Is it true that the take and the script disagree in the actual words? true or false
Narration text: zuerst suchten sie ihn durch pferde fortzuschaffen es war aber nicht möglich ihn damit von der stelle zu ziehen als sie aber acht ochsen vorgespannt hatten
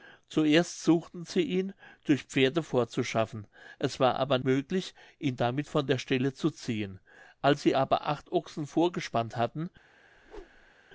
true